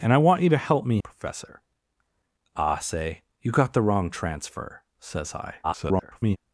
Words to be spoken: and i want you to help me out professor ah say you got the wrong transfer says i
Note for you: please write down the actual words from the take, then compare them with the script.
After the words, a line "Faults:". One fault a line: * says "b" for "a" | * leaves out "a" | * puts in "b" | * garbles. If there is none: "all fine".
and i want you to help me professor ah say you got the wrong transfer says i [garbled]
Faults:
* leaves out "out"
* garbles